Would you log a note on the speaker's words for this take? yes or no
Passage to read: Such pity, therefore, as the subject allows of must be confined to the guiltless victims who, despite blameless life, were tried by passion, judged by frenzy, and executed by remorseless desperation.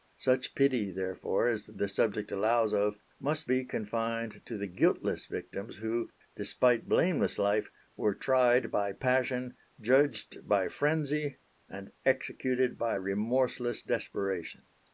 no